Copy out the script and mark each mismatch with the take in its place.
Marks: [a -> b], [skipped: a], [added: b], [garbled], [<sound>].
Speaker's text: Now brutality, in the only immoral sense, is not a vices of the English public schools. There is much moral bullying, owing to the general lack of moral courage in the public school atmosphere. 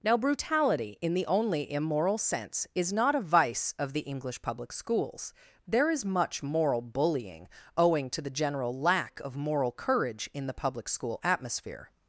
Now brutality, in the only immoral sense, is not a [vices -> vice] of the English public schools. There is much moral bullying, owing to the general lack of moral courage in the public school atmosphere.